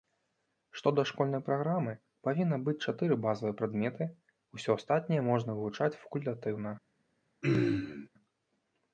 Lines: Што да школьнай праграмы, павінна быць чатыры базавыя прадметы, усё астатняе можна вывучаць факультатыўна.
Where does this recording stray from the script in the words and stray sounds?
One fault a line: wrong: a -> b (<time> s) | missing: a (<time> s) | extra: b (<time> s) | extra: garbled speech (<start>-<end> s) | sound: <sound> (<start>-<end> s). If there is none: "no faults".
sound: throat clearing (7.4-8.1 s)